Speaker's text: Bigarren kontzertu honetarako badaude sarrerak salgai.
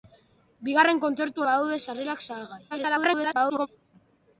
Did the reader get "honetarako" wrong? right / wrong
wrong